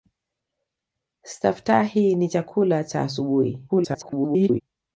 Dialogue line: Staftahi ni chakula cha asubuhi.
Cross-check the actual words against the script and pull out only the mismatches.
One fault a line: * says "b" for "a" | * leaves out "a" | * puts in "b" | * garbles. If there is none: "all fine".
* garbles